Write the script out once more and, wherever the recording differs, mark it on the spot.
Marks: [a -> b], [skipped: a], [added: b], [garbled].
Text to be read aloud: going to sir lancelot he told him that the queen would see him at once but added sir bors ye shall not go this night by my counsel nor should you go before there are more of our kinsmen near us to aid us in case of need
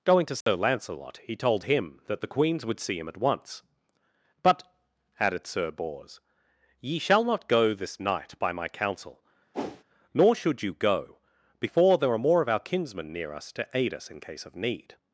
going to sir lancelot he told him that the [queen -> queens] would see him at once but added sir bors ye shall not go this night by my counsel nor should you go before there are more of our kinsmen near us to aid us in case of need